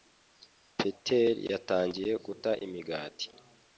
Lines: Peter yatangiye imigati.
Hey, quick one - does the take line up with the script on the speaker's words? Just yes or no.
no